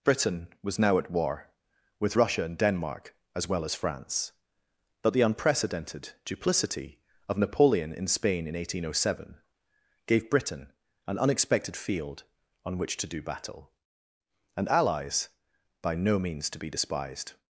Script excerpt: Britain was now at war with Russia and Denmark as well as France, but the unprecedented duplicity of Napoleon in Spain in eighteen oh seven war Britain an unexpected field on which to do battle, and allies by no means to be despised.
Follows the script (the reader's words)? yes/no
no